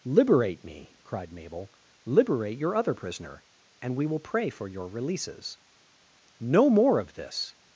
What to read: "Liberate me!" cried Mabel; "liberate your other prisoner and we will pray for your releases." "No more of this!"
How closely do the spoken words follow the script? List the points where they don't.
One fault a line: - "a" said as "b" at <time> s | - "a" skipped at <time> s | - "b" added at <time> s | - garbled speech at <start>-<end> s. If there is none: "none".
none